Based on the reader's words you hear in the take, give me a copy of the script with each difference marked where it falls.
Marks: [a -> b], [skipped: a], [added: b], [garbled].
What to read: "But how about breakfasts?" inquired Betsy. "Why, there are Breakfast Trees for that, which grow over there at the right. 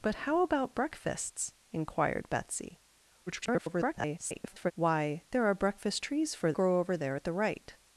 "But how about breakfasts?" inquired Betsy. [garbled] "Why, there are Breakfast Trees for [skipped: that, which] grow over there at the right.